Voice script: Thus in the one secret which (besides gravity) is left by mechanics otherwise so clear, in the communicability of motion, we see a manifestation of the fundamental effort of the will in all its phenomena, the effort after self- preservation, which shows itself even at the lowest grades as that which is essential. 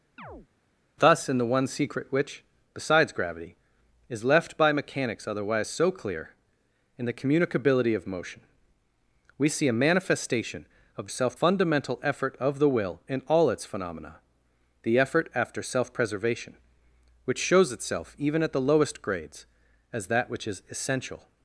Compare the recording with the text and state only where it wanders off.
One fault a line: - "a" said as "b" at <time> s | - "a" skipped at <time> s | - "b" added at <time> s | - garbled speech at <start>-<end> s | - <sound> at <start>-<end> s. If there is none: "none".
- chirp at 0.2-0.5 s
- "the" said as "self" at 11.1 s